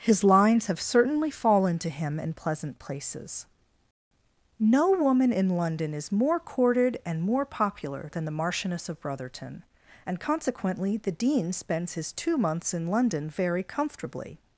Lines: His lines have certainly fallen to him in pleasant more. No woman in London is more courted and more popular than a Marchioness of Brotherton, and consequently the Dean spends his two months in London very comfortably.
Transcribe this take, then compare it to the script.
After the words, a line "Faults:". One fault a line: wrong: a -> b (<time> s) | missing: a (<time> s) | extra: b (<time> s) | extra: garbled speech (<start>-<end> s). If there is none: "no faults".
His lines have certainly fallen to him in pleasant places. No woman in London is more courted and more popular than the Marchioness of Brotherton, and consequently the Dean spends his two months in London very comfortably.
Faults:
wrong: more -> places (2.8 s)
wrong: a -> the (8.2 s)